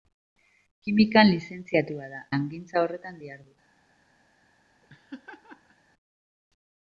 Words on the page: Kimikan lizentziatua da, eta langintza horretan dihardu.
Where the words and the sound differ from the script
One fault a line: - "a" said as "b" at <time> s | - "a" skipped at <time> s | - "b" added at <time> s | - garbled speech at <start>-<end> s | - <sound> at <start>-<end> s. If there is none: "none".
- "eta" skipped at 2.2 s
- laugh at 4.8-5.8 s